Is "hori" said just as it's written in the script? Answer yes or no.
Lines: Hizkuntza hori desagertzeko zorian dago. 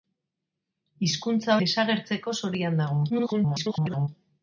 no